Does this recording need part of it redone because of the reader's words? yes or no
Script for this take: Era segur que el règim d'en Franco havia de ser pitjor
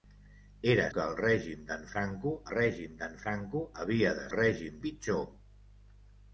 yes